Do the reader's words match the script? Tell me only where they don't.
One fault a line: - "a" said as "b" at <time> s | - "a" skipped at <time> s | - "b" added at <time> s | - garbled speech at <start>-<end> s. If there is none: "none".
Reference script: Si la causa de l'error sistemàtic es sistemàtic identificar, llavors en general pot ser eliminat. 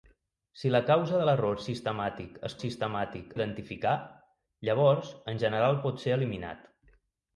none